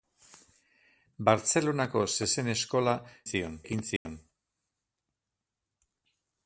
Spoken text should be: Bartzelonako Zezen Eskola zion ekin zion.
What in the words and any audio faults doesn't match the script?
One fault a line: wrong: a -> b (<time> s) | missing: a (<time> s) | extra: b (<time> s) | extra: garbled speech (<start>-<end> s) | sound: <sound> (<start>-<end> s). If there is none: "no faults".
sound: dropout (4.0-4.1 s)